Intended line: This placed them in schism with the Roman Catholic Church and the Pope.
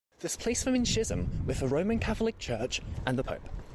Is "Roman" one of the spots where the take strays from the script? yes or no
no